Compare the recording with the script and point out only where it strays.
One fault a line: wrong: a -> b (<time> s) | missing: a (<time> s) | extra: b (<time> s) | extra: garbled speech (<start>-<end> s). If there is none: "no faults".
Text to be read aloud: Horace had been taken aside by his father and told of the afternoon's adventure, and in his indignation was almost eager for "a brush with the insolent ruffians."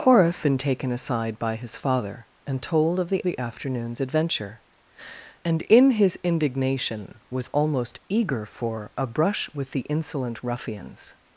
missing: had (0.4 s)
extra: the (3.2 s)